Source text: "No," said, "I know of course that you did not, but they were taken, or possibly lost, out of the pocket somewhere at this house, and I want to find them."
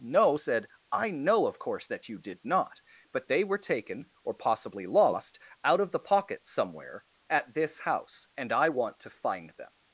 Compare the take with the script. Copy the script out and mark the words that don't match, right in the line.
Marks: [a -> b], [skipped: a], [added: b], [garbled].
"No," said, "I know of course that you did not, but they were taken, or possibly lost, out of the pocket somewhere at this house, and I want to find them."